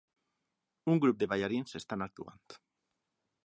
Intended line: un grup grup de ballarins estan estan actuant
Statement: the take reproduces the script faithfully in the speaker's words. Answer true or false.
false